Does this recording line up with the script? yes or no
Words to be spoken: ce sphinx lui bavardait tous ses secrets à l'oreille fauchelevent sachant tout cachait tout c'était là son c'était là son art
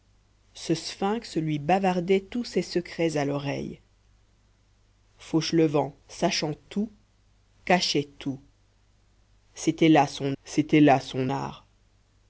yes